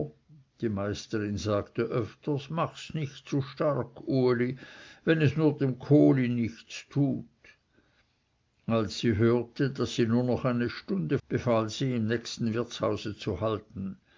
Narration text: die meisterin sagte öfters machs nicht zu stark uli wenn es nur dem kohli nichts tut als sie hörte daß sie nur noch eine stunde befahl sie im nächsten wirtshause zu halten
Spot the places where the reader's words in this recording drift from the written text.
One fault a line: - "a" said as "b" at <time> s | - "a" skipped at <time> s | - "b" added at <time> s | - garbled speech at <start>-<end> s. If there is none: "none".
none